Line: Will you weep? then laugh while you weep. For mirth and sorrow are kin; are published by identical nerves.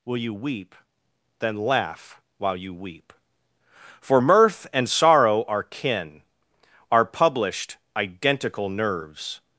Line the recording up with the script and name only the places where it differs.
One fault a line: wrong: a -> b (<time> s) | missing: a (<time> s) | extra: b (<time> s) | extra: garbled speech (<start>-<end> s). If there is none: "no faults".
missing: by (7.8 s)